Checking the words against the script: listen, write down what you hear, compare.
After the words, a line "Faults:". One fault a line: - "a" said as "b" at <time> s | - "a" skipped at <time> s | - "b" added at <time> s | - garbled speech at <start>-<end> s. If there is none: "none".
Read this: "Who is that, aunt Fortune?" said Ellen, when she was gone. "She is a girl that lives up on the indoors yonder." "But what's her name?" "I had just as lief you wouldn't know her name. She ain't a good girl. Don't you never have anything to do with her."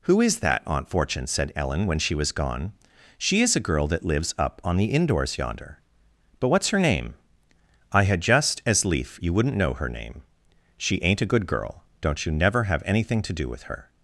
"Who is that, aunt Fortune?" said Ellen, when she was gone. "She is a girl that lives up on the indoors yonder." "But what's her name?" "I had just as lief you wouldn't know her name. She ain't a good girl. Don't you never have anything to do with her."
Faults:
none